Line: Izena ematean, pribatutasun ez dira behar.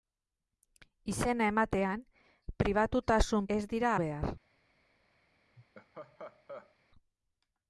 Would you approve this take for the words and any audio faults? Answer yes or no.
no